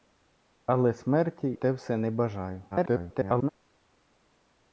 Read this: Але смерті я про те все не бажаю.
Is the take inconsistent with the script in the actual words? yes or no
yes